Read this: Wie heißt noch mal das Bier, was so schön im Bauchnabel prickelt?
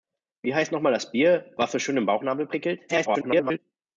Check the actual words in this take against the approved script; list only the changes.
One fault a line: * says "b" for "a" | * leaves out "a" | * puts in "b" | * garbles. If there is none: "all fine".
* garbles